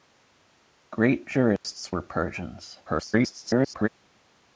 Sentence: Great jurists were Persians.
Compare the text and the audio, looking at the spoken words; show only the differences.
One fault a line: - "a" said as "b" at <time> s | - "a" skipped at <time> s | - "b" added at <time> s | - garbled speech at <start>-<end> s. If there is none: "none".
- garbled speech at 2.9-3.9 s